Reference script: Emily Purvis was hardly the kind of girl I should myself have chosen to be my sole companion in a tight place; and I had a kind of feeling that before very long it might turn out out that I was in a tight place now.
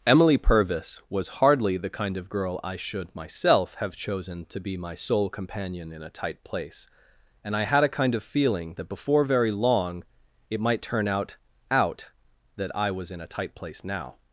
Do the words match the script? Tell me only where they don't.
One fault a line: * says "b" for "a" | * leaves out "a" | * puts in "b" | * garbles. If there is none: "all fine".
all fine